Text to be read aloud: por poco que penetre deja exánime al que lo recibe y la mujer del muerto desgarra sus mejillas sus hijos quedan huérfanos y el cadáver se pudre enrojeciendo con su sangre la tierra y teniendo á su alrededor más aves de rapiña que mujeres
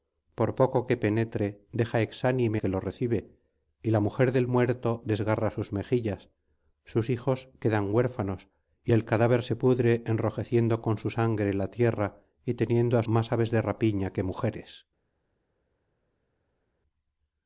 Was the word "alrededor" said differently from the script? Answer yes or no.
yes